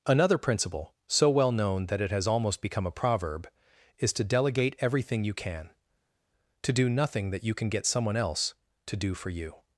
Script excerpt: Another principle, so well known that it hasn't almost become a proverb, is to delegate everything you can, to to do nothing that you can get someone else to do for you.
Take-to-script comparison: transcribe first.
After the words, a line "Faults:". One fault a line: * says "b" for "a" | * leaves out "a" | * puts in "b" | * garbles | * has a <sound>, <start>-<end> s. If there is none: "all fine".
Another principle, so well known that it has almost become a proverb, is to delegate everything you can, to do nothing that you can get someone else to do for you.
Faults:
* says "has" for "hasn't"
* leaves out "to"